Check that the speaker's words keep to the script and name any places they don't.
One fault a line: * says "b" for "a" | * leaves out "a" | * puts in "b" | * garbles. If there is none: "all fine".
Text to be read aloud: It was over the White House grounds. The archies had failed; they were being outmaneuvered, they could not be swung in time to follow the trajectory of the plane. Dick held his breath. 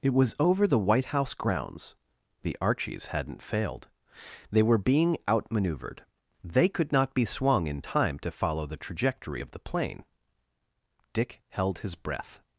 * says "hadn't" for "had"